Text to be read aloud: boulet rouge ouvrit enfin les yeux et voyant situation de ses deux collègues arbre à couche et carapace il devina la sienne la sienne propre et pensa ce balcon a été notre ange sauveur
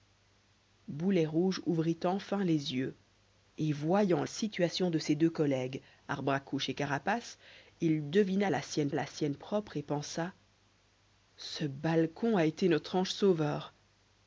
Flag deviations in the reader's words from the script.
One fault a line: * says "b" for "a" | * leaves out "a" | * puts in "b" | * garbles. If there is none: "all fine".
all fine